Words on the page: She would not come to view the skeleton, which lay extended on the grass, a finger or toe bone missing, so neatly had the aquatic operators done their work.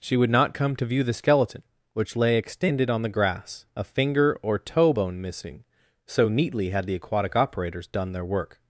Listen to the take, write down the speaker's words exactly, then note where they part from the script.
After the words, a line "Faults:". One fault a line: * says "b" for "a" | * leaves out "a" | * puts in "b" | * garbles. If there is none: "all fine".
She would not come to view the skeleton, which lay extended on the grass, a finger or toe bone missing, so neatly had the aquatic operators done their work.
Faults:
all fine